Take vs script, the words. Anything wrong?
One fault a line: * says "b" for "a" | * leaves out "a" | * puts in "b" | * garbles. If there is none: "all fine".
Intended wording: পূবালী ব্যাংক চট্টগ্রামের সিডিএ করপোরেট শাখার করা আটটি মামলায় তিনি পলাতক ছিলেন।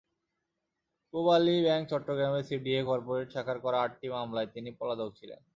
all fine